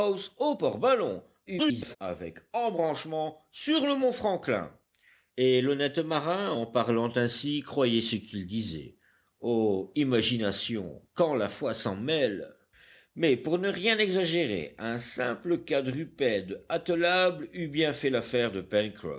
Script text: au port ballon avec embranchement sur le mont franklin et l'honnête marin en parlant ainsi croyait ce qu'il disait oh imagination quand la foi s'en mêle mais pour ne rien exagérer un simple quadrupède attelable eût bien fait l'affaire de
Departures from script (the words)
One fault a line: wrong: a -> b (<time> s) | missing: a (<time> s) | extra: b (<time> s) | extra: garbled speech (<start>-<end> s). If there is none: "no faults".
extra: garbled speech (1.5-2.0 s)